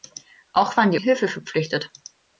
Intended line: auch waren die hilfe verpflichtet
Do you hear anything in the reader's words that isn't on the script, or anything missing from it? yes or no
no